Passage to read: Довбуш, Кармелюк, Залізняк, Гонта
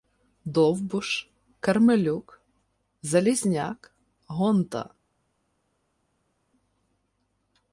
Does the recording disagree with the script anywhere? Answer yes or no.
no